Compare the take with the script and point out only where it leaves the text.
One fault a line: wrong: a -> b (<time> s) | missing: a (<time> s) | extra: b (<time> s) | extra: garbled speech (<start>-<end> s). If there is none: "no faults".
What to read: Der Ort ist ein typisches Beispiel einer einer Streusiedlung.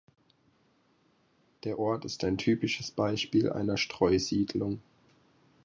missing: einer (3.8 s)